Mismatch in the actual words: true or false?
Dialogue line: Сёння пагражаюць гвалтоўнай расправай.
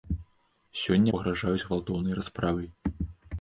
false